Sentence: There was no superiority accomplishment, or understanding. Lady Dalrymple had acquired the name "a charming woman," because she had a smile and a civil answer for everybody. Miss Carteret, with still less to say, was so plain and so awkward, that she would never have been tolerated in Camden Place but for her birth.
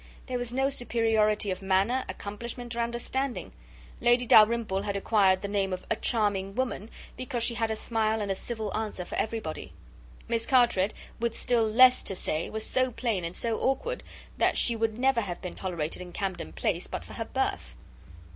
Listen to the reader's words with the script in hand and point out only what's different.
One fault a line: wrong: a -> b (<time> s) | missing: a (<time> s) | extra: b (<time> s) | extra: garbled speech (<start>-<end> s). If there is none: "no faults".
extra: of manner (1.5 s)
extra: of (5.7 s)